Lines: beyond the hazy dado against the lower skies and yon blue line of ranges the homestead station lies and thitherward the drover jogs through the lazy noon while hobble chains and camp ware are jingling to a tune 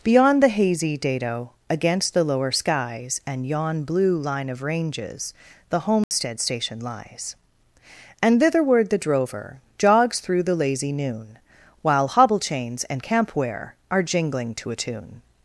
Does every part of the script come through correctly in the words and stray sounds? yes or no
no